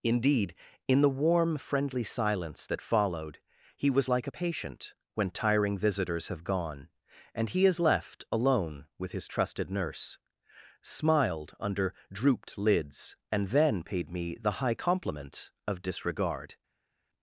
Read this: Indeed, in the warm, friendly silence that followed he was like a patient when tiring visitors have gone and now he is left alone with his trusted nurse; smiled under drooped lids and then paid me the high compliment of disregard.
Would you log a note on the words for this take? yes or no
yes